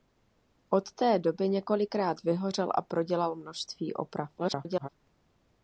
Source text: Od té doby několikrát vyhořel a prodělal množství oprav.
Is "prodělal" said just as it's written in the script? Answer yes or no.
yes